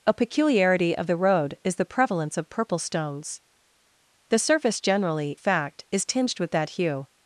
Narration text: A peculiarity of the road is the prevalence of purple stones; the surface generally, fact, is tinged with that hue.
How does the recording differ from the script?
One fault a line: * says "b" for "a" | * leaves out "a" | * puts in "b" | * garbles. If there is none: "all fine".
all fine